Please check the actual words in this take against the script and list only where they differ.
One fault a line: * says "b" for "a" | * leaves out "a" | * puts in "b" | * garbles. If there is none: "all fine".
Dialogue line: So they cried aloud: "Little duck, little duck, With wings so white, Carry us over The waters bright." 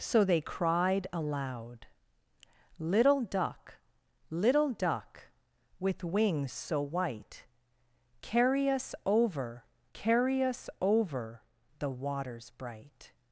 * puts in "Carry us over"